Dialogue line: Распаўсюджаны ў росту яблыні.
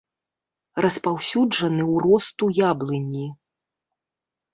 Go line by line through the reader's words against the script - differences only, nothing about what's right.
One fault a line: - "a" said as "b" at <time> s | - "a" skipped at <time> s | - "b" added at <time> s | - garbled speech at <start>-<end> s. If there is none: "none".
none